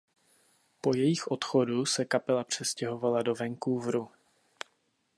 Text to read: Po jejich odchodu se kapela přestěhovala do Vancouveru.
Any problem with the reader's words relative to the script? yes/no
no